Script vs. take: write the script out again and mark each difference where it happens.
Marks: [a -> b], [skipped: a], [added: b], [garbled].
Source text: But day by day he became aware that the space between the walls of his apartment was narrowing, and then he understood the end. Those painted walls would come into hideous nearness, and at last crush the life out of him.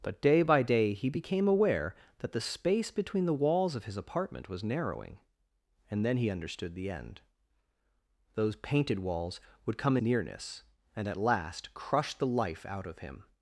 But day by day he became aware that the space between the walls of his apartment was narrowing, and then he understood the end. Those painted walls would come [skipped: into hideous] nearness, and at last crush the life out of him.